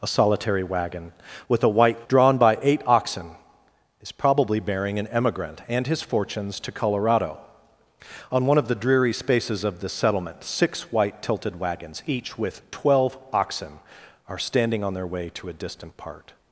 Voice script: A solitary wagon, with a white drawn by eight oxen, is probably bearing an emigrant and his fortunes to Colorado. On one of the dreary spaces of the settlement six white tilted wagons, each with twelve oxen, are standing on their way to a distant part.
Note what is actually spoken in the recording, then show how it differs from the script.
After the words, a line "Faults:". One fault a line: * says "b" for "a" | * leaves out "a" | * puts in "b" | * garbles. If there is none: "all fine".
A solitary wagon, with a white drawn by eight oxen, is probably bearing an emigrant and his fortunes to Colorado. On one of the dreary spaces of the settlement six white tilted wagons, each with twelve oxen, are standing on their way to a distant part.
Faults:
all fine